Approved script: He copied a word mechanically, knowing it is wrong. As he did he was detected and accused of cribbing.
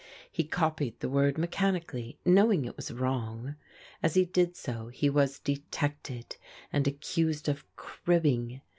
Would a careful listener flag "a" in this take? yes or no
yes